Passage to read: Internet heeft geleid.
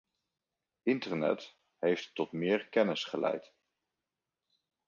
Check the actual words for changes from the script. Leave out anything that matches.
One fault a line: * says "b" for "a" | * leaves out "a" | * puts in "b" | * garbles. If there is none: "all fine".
* puts in "tot meer kennis"